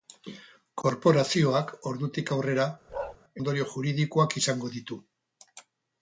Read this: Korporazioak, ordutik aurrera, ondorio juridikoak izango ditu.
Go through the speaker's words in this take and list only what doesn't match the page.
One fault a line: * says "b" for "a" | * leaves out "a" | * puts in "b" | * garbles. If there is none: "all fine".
all fine